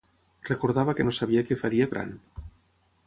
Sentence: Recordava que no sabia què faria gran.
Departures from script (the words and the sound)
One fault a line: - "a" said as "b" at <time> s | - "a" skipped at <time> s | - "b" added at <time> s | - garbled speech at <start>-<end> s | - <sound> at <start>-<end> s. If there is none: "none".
none